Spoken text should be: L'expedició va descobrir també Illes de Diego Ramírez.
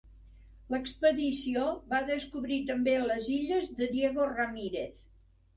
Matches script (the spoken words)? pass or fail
fail